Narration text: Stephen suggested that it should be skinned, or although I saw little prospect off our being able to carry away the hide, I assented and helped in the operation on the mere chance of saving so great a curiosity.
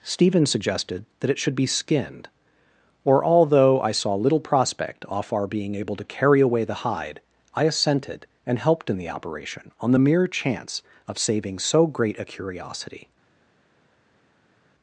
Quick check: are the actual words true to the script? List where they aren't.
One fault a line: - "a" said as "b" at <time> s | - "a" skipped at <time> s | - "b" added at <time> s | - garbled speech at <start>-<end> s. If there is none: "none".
none